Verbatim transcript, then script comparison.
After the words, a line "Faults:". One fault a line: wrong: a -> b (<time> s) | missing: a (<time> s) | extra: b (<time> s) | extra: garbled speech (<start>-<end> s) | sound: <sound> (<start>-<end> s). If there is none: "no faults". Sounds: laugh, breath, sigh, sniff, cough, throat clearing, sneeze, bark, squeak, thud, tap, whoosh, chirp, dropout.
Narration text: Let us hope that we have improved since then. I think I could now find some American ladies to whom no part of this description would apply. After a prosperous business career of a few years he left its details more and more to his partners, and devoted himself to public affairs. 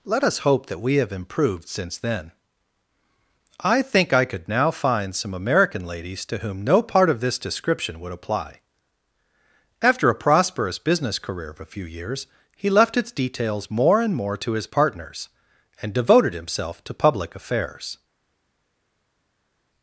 Let us hope that we have improved since then. I think I could now find some American ladies to whom no part of this description would apply. After a prosperous business career of a few years he left its details more and more to his partners, and devoted himself to public affairs.
Faults:
no faults